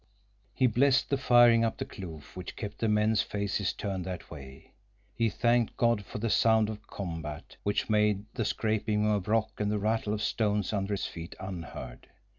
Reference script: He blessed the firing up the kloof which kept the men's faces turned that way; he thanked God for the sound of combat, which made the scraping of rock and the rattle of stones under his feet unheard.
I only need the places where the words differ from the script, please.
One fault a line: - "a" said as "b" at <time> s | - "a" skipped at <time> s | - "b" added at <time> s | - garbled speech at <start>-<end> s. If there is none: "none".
none